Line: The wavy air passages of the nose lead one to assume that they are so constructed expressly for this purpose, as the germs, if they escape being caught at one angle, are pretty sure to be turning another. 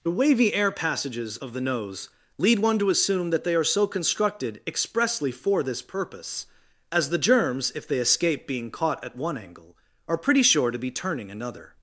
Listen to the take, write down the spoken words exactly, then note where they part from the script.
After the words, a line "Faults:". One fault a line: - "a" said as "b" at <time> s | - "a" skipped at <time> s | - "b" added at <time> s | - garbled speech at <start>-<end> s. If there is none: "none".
The wavy air passages of the nose lead one to assume that they are so constructed expressly for this purpose, as the germs, if they escape being caught at one angle, are pretty sure to be turning another.
Faults:
none